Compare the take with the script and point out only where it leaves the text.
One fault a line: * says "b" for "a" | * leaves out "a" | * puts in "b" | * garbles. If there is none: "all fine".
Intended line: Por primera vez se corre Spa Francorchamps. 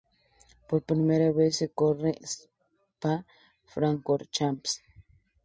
all fine